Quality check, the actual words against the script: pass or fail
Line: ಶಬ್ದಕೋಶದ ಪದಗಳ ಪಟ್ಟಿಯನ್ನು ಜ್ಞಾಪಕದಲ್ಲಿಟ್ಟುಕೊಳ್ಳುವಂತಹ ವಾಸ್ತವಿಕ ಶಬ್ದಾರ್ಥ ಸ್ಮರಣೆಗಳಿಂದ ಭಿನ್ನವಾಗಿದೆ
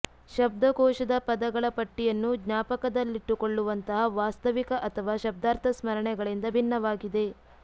fail